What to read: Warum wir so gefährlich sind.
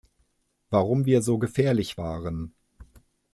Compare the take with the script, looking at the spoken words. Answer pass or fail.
fail